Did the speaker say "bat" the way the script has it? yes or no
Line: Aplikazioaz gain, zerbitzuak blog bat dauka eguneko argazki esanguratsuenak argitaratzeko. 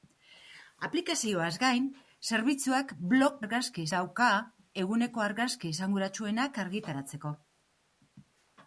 no